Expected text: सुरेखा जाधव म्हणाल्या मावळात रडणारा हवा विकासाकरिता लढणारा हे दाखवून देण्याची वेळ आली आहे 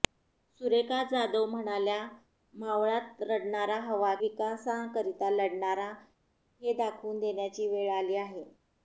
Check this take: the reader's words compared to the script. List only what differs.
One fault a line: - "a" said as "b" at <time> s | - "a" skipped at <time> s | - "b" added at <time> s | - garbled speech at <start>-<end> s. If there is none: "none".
none